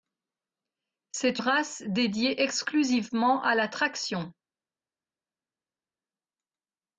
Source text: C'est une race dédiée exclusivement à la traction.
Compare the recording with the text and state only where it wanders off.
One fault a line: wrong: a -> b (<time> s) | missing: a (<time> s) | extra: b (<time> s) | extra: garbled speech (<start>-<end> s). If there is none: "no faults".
missing: une (1.4 s)